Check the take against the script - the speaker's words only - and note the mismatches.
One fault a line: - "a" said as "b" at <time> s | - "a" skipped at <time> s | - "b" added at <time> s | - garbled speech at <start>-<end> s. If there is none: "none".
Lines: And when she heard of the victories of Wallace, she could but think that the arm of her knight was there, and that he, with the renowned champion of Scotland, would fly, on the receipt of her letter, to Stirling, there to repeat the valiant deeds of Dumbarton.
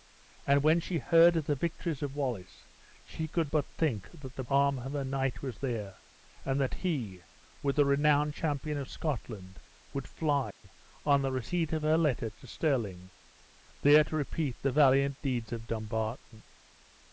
none